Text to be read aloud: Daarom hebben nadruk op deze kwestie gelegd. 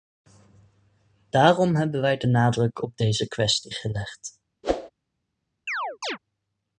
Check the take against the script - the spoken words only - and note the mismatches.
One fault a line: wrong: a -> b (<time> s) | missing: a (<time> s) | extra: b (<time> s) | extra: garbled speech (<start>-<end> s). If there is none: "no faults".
extra: wij de (2.0 s)